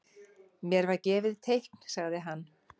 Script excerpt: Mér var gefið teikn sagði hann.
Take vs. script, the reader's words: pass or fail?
pass